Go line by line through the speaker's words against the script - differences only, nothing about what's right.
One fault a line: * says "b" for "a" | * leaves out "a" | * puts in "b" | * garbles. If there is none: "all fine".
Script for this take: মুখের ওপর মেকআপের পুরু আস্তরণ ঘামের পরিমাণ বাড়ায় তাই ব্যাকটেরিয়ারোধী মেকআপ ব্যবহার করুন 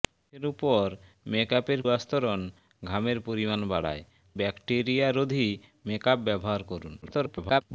* leaves out "পুরু"
* leaves out "তাই"
* garbles